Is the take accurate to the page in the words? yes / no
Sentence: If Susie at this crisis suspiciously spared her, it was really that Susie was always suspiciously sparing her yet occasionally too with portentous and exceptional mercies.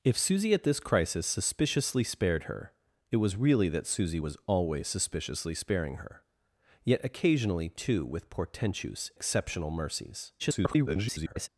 no